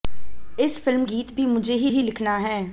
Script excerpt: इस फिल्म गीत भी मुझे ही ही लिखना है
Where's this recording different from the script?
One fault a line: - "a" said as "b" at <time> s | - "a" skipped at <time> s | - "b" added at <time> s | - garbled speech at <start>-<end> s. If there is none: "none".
none